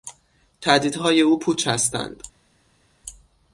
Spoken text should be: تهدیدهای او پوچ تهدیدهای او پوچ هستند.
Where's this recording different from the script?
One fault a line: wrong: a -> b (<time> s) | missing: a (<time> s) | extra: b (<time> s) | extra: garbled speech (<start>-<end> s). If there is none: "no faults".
missing: تهدیدهای او پوچ (1.7 s)